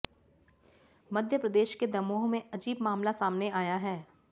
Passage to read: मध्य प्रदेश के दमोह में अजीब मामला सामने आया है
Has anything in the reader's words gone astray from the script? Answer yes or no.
no